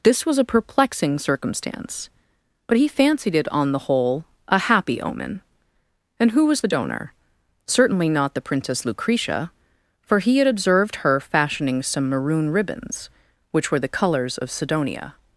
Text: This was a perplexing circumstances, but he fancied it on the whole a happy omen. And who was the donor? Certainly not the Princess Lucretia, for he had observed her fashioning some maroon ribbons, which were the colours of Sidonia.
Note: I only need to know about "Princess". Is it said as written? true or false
true